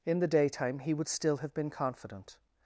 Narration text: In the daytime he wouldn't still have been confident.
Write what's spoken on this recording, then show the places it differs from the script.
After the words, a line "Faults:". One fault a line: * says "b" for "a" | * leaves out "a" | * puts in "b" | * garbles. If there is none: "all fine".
In the daytime he would still have been confident.
Faults:
* says "would" for "wouldn't"